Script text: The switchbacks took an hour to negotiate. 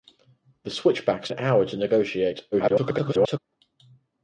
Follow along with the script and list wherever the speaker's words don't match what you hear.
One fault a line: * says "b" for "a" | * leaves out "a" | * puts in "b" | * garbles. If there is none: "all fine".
* leaves out "took"
* garbles